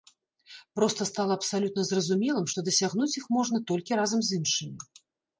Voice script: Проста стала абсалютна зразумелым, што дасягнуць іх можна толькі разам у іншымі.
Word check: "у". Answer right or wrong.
wrong